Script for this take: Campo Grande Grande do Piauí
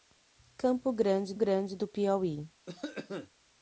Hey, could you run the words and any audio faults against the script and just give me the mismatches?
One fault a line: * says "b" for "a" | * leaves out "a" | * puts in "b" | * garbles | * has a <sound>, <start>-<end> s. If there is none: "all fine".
* has a cough, 2.7-3.3 s